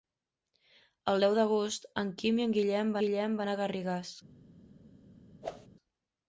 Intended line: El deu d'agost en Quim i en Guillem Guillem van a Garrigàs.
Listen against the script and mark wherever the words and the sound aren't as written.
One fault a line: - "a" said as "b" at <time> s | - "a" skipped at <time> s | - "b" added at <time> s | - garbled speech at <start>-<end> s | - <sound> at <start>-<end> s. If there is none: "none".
- whoosh at 5.4-5.7 s